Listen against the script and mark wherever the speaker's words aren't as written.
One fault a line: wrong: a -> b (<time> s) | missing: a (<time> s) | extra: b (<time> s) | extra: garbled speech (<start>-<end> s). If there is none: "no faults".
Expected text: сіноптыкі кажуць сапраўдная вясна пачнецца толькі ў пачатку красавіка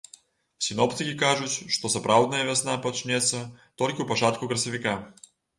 extra: што (1.8 s)